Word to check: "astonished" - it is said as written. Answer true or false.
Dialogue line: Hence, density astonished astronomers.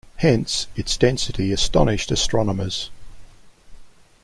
true